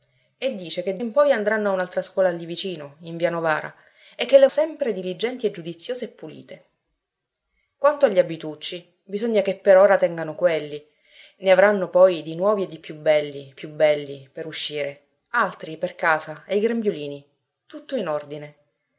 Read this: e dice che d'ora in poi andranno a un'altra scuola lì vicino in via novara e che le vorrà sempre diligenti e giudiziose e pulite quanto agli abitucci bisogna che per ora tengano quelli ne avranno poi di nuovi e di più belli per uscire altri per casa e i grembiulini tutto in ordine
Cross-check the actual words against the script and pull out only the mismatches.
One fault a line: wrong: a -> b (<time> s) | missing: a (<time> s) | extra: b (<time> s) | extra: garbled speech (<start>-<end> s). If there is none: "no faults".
missing: d'ora (1.0 s)
missing: vorrà (4.5 s)
extra: più belli (13.5 s)